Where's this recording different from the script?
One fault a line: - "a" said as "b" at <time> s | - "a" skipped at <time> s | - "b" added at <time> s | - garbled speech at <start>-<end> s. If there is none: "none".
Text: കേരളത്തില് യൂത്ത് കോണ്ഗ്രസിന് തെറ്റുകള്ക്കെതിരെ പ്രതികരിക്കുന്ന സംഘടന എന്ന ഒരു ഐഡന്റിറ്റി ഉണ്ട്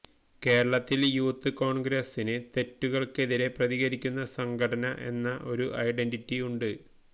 none